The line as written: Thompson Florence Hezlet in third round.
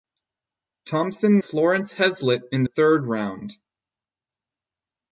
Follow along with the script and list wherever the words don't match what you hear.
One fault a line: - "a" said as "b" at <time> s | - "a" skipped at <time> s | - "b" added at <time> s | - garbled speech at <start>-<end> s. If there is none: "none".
none